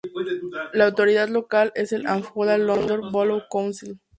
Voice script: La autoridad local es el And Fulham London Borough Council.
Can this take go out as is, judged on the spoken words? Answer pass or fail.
pass